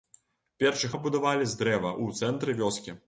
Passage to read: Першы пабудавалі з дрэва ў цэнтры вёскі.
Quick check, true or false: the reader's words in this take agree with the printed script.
true